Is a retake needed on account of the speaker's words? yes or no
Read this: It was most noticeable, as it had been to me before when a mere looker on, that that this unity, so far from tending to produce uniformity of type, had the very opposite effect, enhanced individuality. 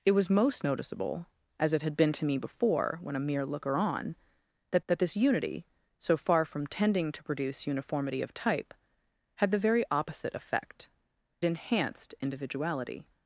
no